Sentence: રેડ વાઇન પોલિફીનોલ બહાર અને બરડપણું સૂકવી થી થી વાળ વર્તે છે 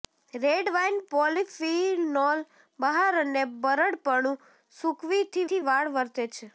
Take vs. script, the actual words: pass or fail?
pass